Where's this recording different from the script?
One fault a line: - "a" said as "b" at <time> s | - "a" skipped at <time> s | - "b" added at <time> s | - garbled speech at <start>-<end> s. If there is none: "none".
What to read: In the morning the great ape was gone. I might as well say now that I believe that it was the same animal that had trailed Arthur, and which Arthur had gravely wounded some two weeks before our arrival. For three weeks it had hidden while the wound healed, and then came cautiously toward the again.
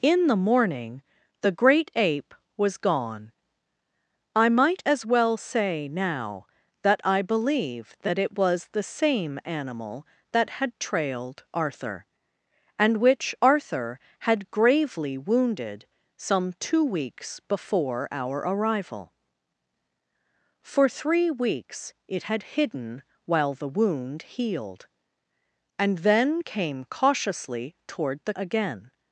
none